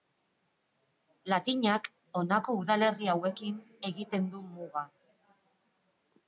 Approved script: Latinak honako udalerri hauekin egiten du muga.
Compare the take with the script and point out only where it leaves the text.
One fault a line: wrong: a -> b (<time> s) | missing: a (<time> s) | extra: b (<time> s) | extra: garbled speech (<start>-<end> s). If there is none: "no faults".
no faults